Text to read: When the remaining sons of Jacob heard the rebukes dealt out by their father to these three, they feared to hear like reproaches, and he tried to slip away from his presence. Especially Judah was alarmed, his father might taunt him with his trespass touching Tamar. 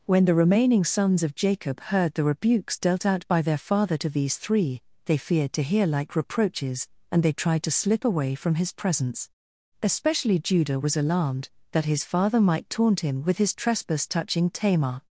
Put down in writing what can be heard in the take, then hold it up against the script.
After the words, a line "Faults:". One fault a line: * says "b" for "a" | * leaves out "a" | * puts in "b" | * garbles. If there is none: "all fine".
When the remaining sons of Jacob heard the rebukes dealt out by their father to these three, they feared to hear like reproaches, and they tried to slip away from his presence. Especially Judah was alarmed, that his father might taunt him with his trespass touching Tamar.
Faults:
* says "they" for "he"
* puts in "that"